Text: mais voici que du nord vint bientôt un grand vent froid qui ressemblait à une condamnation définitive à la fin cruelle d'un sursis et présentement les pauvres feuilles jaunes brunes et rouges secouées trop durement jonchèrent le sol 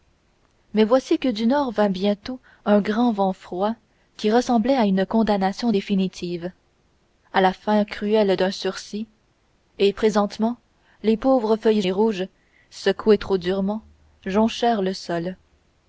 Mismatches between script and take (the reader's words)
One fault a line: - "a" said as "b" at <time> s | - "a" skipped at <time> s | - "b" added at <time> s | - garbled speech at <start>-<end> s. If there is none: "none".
- "jaunes brunes" skipped at 11.8 s